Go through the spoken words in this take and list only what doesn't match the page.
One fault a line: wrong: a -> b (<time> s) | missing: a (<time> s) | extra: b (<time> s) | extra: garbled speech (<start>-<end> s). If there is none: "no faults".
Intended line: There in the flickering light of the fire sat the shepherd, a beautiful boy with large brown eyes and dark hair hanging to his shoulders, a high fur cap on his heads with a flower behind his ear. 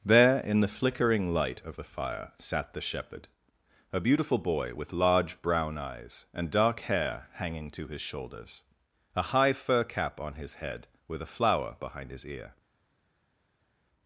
wrong: heads -> head (10.5 s)